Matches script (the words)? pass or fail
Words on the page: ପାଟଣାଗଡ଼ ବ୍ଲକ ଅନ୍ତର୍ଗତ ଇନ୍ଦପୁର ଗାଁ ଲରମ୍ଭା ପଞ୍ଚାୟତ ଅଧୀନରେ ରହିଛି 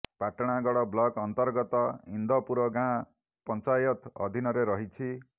fail